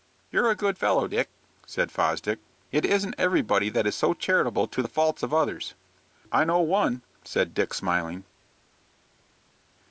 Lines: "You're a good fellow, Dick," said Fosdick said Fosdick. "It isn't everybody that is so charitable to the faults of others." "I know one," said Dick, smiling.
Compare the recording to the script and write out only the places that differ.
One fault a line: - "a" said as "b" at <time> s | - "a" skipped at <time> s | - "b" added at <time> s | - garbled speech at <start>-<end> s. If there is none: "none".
- "said Fosdick" skipped at 2.4 s